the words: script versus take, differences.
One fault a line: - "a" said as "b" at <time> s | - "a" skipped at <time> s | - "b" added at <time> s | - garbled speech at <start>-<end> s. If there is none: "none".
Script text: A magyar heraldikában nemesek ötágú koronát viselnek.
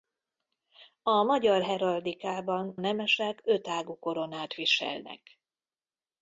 none